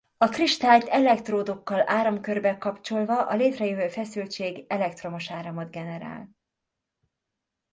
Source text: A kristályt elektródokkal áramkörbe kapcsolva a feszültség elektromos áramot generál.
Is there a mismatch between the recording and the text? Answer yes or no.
yes